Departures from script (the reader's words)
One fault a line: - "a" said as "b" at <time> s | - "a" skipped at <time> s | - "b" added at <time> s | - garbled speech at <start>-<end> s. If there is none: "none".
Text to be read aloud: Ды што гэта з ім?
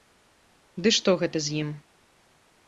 none